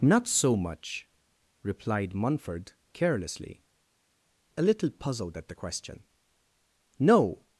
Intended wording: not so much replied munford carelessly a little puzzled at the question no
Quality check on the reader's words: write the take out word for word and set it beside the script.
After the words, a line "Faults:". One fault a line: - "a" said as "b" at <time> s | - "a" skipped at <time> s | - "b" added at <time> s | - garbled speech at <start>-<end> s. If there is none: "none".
not so much replied munford carelessly a little puzzled at the question no
Faults:
none